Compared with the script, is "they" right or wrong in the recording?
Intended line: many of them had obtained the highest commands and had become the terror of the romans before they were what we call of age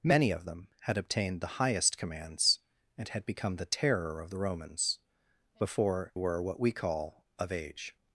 wrong